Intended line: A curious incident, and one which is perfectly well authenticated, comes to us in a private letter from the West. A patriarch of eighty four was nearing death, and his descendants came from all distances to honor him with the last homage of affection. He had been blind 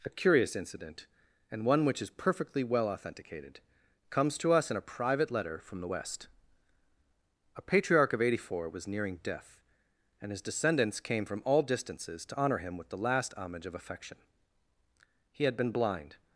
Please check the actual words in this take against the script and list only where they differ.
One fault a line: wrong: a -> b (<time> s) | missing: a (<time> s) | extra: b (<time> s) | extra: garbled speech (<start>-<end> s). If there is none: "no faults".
no faults